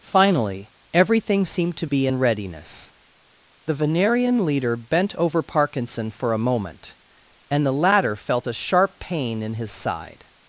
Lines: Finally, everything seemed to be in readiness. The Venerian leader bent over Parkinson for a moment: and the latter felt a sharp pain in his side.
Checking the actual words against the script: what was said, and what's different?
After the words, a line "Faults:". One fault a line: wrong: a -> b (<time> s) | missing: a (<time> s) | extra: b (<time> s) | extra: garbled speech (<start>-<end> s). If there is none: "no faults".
Finally, everything seemed to be in readiness. The Venerian leader bent over Parkinson for a moment: and the latter felt a sharp pain in his side.
Faults:
no faults